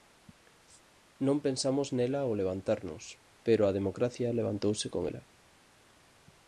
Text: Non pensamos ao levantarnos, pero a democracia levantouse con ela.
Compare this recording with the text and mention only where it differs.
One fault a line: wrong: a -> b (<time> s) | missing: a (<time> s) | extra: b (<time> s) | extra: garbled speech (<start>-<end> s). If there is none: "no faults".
extra: nela (2.0 s)